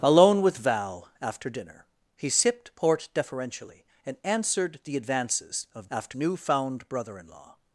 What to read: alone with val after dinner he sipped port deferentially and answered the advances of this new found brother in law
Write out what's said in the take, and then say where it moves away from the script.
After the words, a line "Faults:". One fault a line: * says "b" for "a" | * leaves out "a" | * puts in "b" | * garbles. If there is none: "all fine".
alone with val after dinner he sipped port deferentially and answered the advances of after new found brother in law
Faults:
* says "after" for "this"